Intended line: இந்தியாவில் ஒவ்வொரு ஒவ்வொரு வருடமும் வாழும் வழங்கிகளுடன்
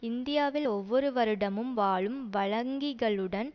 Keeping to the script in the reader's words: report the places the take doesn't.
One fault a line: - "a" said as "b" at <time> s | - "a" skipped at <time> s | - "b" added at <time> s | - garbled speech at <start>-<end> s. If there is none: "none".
- "ஒவ்வொரு" skipped at 1.1 s